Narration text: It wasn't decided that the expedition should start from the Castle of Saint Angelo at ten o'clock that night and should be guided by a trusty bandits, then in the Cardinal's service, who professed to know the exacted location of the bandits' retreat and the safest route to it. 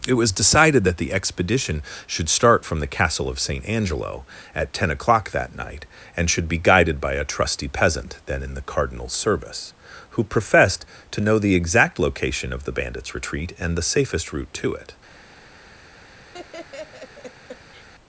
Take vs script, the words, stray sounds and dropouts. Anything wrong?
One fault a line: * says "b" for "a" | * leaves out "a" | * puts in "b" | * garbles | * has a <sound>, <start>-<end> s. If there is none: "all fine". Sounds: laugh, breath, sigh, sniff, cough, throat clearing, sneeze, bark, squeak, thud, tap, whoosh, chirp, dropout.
* says "was" for "wasn't"
* says "peasant" for "bandits"
* says "exact" for "exacted"
* has a laugh, 16.3-17.9 s